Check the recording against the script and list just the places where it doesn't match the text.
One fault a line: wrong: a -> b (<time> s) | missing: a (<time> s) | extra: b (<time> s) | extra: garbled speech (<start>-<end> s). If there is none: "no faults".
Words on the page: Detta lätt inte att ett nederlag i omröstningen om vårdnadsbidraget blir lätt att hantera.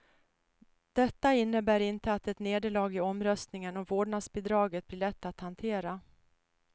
wrong: lätt -> innebär (1.3 s)